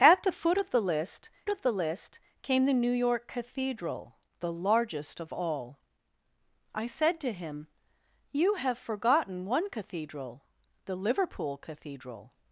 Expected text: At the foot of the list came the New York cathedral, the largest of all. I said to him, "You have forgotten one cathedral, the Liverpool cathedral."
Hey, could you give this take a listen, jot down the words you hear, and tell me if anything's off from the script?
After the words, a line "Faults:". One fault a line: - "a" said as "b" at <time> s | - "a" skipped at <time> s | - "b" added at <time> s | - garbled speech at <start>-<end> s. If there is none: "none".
At the foot of the list of the list came the New York cathedral, the largest of all. I said to him, "You have forgotten one cathedral, the Liverpool cathedral."
Faults:
- "of the list" added at 1.5 s